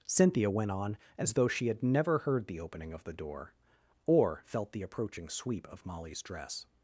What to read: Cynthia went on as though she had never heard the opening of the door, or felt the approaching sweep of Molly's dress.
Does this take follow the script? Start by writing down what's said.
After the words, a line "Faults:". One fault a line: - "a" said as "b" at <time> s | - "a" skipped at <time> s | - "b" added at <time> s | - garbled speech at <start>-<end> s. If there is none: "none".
Cynthia went on as though she had never heard the opening of the door, or felt the approaching sweep of Molly's dress.
Faults:
none